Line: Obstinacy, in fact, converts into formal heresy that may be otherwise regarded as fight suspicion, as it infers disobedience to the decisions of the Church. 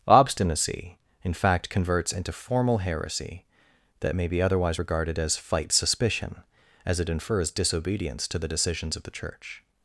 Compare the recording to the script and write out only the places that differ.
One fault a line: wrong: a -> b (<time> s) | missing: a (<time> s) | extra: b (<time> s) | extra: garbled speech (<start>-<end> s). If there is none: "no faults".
no faults